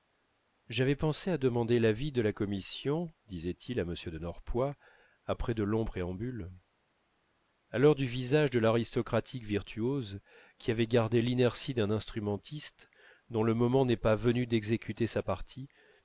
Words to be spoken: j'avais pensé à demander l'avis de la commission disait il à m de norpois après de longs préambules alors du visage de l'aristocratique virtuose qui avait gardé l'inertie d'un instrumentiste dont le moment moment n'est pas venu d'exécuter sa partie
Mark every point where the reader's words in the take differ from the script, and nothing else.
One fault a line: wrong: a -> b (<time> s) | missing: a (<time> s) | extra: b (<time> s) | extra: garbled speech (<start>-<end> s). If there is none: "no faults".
missing: moment (13.8 s)